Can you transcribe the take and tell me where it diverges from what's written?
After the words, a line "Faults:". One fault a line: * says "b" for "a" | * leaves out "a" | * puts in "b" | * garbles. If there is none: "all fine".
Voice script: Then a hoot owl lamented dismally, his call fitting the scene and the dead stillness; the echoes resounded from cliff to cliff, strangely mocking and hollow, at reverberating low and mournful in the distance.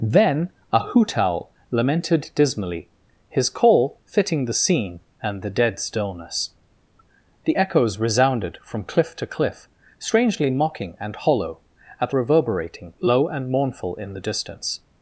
Then a hoot owl lamented dismally, his call fitting the scene and the dead stillness; the echoes resounded from cliff to cliff, strangely mocking and hollow, at reverberating low and mournful in the distance.
Faults:
all fine